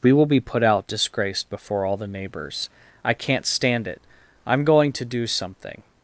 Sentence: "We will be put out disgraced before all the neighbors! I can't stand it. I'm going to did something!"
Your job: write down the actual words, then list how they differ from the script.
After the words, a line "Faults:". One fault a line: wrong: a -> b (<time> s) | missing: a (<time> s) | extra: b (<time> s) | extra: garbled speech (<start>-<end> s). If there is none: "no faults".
"We will be put out disgraced before all the neighbors! I can't stand it. I'm going to do something!"
Faults:
wrong: did -> do (5.1 s)